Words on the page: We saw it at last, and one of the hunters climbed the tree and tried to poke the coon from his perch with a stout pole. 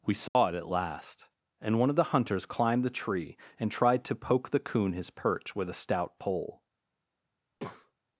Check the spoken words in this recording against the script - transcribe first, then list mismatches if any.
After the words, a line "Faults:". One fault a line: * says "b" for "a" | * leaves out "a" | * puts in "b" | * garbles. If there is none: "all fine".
We saw it at last, and one of the hunters climbed the tree and tried to poke the coon his perch with a stout pole.
Faults:
* leaves out "from"